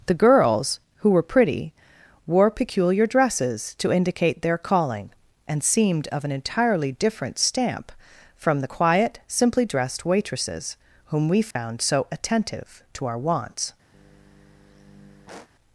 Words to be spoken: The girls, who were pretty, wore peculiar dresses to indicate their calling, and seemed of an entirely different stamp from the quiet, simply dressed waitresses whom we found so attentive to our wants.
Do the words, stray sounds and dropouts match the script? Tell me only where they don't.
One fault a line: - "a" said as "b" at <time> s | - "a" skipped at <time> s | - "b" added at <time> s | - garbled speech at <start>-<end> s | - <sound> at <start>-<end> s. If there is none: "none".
- dropout at 11.5-11.6 s
- sigh at 13.9-15.5 s